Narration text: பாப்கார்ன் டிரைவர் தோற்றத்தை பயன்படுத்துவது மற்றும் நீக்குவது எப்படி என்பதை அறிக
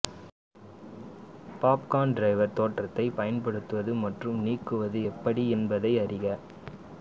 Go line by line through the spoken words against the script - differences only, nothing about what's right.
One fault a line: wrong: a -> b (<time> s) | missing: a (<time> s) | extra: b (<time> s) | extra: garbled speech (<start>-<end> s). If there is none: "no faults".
no faults